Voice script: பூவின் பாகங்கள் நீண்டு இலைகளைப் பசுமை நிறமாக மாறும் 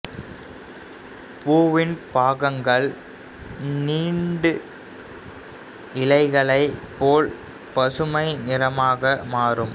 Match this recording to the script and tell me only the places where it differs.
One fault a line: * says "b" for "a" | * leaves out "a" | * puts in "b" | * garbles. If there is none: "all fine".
* puts in "போல்"